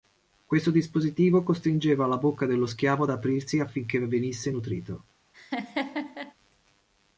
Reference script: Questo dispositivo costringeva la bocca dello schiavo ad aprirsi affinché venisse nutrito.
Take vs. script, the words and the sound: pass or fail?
fail